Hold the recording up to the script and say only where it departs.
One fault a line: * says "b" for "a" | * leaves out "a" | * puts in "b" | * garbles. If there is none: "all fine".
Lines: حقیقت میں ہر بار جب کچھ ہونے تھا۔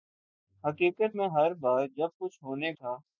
all fine